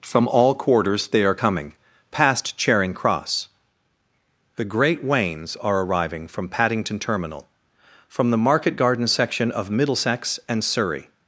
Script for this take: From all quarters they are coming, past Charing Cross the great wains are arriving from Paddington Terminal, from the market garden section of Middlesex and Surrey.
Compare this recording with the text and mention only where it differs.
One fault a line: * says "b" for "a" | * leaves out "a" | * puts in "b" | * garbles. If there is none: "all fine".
all fine